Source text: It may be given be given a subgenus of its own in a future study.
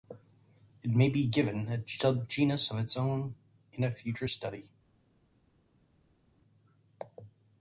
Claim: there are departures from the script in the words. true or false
true